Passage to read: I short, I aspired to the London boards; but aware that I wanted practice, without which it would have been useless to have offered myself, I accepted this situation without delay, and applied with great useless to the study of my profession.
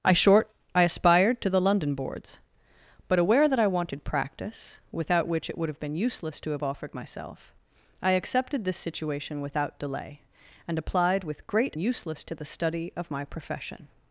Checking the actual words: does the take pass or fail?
pass